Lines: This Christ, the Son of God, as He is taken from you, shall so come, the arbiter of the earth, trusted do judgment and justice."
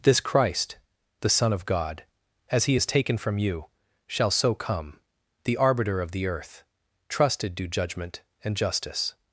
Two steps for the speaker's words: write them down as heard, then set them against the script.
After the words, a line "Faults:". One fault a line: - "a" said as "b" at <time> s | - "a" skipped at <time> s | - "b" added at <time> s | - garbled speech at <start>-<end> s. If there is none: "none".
This Christ, the Son of God, as He is taken from you, shall so come, the arbiter of the earth, trusted do judgment and justice."
Faults:
none